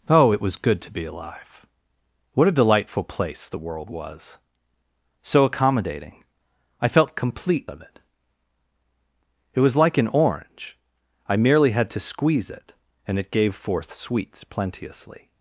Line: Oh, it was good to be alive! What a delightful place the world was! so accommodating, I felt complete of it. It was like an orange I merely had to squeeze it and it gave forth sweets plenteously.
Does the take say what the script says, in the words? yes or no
yes